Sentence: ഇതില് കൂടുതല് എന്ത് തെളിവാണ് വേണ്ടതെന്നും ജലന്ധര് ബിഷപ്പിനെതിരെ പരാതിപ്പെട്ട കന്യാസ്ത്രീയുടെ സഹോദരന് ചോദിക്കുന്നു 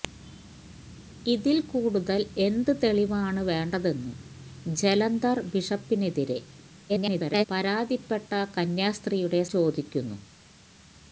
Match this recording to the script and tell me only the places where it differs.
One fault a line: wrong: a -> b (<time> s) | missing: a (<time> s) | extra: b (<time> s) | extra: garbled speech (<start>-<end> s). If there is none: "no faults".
extra: garbled speech (6.9-7.5 s)
missing: സഹോദരന് (9.4 s)